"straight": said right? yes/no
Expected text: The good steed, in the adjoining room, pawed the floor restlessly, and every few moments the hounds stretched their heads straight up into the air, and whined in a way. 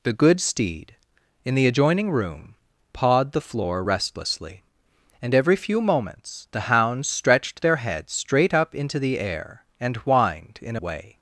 yes